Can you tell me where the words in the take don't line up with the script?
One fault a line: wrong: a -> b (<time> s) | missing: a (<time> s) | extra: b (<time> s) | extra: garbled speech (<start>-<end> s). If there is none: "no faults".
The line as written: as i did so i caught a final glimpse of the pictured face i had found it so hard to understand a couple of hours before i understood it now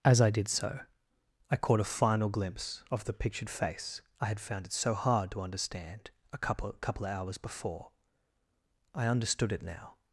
extra: couple (6.8 s)